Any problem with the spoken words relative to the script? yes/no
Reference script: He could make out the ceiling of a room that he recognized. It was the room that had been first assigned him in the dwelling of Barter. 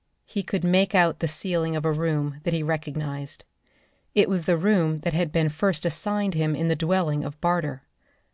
no